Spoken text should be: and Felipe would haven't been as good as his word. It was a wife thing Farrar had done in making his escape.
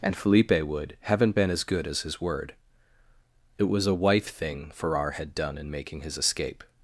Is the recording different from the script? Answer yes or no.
no